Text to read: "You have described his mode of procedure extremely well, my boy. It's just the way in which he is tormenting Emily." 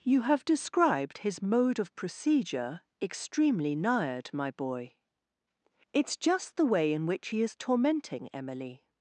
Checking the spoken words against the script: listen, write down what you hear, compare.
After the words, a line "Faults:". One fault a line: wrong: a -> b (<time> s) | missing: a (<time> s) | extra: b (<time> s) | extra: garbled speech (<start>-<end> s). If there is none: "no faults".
"You have described his mode of procedure extremely nired, my boy. It's just the way in which he is tormenting Emily."
Faults:
wrong: well -> nired (3.8 s)